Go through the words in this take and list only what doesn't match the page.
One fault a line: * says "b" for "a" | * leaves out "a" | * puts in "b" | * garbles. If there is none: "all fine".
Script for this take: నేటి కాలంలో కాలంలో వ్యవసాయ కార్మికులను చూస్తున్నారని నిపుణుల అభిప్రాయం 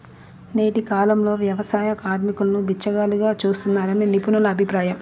* leaves out "కాలంలో"
* puts in "బిచ్చగాళ్లుగా"